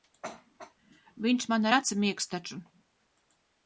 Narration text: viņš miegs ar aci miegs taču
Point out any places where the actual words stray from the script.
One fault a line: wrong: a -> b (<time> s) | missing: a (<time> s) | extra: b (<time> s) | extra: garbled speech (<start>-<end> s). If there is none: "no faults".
wrong: miegs -> man (1.5 s)